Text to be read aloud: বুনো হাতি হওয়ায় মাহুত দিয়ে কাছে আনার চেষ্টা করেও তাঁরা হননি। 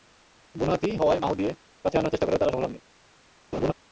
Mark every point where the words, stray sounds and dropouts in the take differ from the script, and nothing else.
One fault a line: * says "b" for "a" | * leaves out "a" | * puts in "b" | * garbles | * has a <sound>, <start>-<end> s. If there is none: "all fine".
* puts in "সফল"
* has a laugh, 3.5-3.7 s